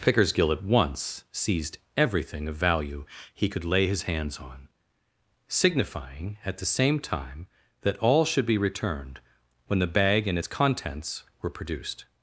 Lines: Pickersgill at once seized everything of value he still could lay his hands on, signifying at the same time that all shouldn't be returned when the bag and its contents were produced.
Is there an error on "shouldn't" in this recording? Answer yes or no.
yes